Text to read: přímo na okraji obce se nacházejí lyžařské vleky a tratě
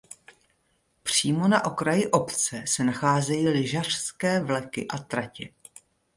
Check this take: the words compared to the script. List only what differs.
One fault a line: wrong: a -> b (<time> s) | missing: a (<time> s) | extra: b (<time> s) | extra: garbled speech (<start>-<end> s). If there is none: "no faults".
no faults